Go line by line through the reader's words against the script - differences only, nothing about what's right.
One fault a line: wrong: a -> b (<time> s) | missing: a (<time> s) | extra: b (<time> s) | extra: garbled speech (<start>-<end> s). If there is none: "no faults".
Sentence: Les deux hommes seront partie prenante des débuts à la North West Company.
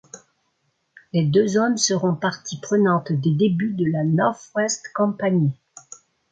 wrong: à -> de (3.8 s)